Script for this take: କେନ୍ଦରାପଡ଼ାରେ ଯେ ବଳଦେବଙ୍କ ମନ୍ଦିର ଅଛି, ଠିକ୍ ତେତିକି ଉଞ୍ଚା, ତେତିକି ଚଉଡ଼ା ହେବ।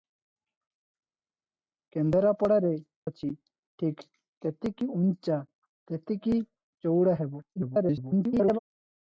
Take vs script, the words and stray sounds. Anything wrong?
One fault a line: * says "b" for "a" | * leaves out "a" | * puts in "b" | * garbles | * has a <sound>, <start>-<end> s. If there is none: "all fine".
* leaves out "ଯେ ବଳଦେବଙ୍କ ମନ୍ଦିର"
* garbles